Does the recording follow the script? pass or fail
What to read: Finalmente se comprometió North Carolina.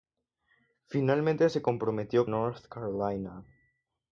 pass